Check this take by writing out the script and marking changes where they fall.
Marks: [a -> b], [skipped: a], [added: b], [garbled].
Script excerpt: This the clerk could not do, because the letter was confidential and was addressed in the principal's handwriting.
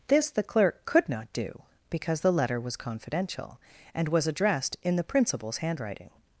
This the clerk could not do, because the letter was confidential and was addressed in the principal's handwriting.